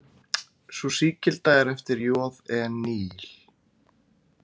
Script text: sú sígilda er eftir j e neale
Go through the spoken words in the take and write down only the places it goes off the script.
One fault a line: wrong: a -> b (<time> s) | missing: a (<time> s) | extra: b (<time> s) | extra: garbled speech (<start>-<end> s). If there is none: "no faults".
no faults